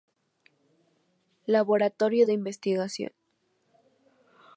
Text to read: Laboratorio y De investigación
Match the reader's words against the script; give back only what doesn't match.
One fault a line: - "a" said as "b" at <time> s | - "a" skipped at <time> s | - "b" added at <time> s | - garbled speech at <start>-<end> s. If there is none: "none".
none